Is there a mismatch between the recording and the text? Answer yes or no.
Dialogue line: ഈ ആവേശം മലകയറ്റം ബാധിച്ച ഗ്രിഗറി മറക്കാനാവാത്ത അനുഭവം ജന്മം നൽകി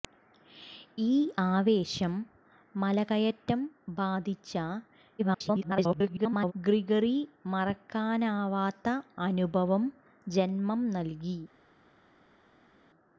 yes